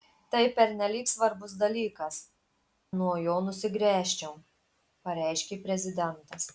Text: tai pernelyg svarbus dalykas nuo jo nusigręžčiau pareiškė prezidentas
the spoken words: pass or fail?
pass